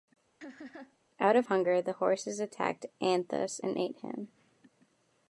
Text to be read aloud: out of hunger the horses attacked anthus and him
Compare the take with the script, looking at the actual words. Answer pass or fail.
fail